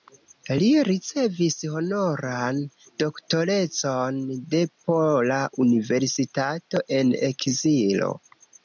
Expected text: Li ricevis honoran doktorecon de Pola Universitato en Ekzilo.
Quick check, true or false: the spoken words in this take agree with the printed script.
true